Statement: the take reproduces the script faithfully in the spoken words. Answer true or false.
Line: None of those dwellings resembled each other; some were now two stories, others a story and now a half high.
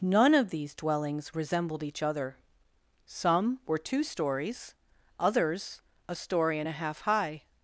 false